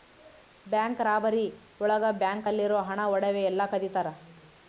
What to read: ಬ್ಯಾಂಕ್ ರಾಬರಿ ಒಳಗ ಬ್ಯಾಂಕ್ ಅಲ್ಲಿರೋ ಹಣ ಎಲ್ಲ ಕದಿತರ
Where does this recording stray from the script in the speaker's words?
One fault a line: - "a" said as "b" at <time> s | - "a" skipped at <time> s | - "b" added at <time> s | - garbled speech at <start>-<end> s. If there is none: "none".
- "ಒಡವೆ" added at 3.1 s